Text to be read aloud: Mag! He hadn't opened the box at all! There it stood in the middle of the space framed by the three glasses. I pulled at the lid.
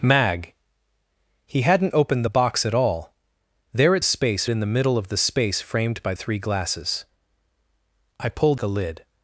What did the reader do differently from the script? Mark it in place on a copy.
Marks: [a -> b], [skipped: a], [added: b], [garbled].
Mag! He hadn't opened the box at all! There it [stood -> space] in the middle of the space framed by [skipped: the] three glasses. I pulled [skipped: at] the lid.